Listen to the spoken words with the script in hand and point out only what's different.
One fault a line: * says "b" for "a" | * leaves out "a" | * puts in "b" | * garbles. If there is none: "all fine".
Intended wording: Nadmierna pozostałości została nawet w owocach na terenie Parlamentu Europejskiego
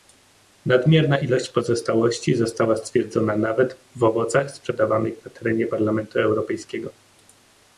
* puts in "ilość"
* puts in "stwierdzona"
* puts in "sprzedawanych"